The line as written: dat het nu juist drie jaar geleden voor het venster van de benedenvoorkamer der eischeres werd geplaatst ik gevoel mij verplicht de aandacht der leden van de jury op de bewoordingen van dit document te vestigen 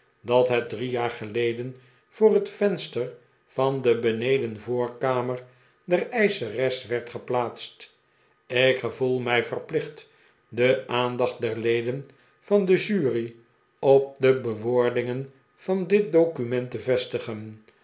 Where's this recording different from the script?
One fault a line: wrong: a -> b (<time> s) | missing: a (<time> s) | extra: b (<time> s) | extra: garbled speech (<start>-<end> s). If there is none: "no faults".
missing: nu juist (0.7 s)